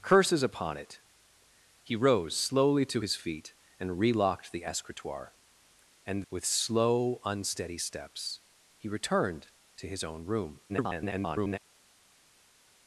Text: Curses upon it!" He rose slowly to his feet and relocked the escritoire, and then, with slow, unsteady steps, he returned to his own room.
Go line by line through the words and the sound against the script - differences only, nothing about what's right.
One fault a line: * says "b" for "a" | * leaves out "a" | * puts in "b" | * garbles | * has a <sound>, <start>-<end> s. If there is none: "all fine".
* leaves out "then"
* garbles